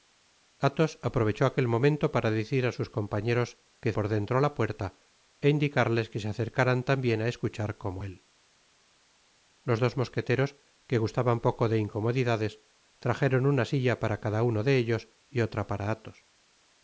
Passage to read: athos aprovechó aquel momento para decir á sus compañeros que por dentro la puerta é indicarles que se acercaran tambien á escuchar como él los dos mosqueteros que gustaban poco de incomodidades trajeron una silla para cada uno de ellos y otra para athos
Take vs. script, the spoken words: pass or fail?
pass